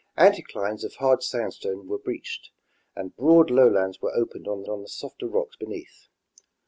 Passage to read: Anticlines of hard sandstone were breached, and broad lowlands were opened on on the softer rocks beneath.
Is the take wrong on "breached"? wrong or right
right